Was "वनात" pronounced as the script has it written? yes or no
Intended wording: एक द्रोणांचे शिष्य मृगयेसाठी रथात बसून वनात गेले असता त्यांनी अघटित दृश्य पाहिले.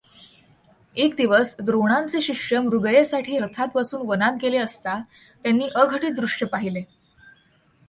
yes